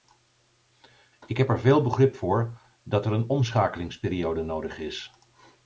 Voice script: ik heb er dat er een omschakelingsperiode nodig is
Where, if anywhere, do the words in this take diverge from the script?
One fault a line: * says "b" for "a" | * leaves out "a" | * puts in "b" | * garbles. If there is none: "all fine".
* puts in "veel begrip voor"